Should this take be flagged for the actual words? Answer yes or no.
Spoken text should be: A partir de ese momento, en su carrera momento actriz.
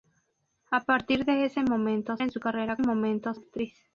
no